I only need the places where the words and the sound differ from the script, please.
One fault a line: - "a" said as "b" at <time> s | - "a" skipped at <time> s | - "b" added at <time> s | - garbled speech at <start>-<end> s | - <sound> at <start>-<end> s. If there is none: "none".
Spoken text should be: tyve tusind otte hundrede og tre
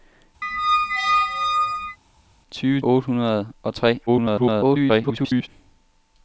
- squeak at 0.4-2.0 s
- "tusind" skipped at 2.8 s
- garbled speech at 4.1-5.5 s